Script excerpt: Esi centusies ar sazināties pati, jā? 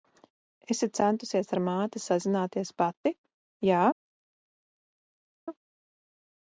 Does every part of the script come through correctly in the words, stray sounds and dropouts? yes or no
no